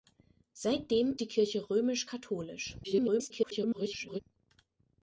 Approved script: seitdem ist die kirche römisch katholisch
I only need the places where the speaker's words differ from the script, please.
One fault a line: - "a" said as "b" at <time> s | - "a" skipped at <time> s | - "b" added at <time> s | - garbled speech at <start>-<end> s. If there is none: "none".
- "ist" skipped at 1.1 s
- garbled speech at 2.8-4.2 s